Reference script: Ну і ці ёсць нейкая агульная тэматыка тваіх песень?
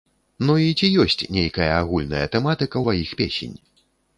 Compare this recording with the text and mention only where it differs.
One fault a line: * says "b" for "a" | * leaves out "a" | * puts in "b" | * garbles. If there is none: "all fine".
all fine